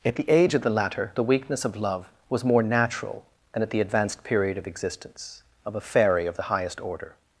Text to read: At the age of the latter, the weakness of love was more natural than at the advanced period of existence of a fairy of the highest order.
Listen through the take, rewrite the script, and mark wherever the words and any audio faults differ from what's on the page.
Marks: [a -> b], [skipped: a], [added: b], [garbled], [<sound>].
At the age of the latter, the weakness of love was more natural than at the advanced period of existence of a fairy of the highest order.